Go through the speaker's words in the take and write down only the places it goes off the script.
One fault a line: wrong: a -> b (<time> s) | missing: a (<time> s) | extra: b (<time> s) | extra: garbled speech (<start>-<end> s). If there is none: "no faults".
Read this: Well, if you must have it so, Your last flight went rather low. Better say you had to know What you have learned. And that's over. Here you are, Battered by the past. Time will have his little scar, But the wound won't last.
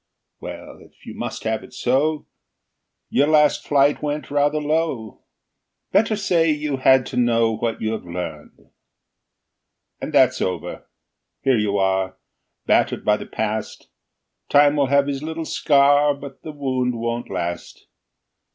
no faults